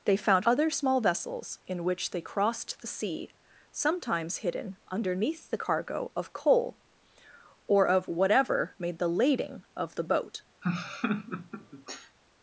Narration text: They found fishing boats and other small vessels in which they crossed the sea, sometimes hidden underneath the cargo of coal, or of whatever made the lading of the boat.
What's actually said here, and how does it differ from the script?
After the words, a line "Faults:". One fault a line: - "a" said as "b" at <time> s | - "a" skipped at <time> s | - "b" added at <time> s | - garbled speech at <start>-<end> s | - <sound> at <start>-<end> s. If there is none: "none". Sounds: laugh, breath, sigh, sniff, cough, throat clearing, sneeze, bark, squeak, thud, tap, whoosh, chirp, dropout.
They found other small vessels in which they crossed the sea, sometimes hidden underneath the cargo of coal, or of whatever made the lading of the boat.
Faults:
- "fishing boats and" skipped at 0.5 s
- laugh at 10.6-12.2 s